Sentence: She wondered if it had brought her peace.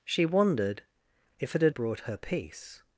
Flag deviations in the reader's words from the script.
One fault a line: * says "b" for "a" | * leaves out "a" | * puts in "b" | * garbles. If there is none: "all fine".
all fine